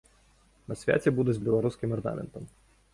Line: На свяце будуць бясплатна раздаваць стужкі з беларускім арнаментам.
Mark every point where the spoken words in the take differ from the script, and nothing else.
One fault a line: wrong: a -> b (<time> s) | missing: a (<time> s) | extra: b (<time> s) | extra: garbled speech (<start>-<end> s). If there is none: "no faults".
missing: бясплатна раздаваць стужкі (1.4 s)